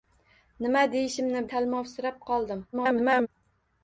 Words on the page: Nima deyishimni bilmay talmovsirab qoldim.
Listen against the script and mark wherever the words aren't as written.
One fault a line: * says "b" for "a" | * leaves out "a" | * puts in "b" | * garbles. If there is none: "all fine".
* leaves out "bilmay"
* garbles